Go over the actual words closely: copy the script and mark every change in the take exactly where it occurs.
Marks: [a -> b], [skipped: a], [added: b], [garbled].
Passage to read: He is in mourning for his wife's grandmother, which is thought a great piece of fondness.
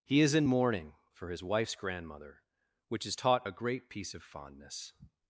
He is in mourning for his wife's grandmother, which is [thought -> taught] a great piece of fondness.